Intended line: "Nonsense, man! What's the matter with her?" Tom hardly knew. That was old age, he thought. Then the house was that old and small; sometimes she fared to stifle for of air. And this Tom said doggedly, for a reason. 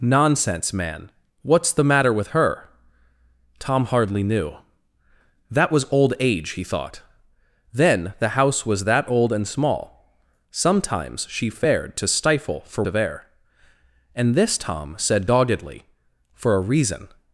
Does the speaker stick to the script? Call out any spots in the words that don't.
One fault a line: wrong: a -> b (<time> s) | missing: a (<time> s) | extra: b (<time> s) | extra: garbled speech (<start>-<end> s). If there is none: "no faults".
no faults